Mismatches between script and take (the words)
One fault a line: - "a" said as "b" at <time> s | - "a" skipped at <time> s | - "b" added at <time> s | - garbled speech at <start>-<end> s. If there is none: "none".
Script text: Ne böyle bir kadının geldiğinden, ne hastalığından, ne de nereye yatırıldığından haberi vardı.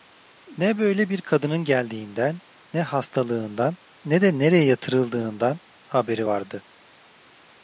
none